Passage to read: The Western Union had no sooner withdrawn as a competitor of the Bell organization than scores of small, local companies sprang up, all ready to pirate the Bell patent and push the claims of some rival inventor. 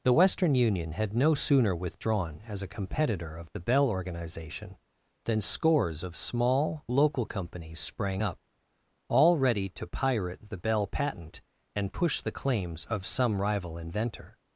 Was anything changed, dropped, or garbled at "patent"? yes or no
no